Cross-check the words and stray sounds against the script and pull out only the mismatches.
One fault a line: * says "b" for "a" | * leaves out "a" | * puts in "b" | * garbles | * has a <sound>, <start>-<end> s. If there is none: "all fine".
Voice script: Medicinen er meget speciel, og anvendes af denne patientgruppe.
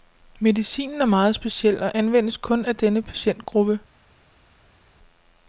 * puts in "kun"